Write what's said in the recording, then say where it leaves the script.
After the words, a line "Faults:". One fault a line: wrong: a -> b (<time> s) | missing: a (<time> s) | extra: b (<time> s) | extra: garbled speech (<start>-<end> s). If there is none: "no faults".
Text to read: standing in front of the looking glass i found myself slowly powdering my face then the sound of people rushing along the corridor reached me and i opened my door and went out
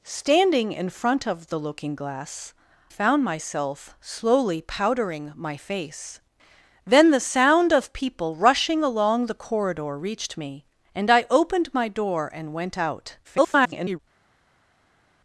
standing in front of the looking glass found myself slowly powdering my face then the sound of people rushing along the corridor reached me and i opened my door and went out [garbled]
Faults:
missing: i (2.5 s)
extra: garbled speech (13.2-14.0 s)